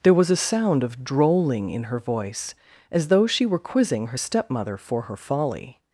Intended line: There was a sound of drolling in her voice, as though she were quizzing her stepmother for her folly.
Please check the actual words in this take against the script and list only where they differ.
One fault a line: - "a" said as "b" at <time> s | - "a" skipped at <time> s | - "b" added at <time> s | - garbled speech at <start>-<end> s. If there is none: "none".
none